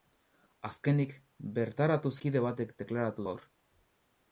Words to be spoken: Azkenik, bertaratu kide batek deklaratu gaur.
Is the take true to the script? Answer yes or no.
yes